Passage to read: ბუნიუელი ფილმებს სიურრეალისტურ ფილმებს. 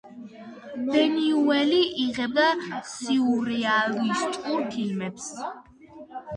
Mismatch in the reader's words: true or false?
true